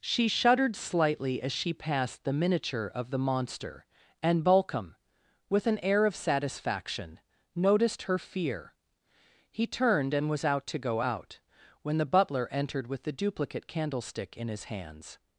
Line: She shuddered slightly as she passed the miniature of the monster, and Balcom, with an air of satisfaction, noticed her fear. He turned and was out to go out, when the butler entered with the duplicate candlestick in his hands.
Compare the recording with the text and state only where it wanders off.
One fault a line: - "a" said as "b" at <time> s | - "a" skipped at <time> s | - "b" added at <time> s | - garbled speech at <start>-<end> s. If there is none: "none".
none